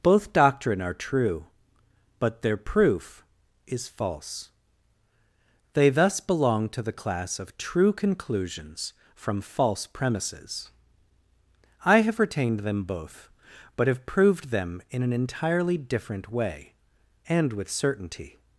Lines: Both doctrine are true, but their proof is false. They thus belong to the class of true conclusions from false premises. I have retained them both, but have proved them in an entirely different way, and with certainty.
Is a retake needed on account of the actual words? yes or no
no